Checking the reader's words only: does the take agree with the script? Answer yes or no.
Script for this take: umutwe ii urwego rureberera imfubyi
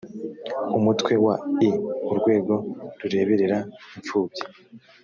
no